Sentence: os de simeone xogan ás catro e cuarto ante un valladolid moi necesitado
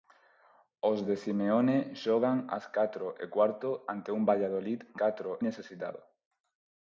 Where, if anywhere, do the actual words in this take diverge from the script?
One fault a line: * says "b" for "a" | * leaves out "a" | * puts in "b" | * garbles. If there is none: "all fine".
* says "catro" for "moi"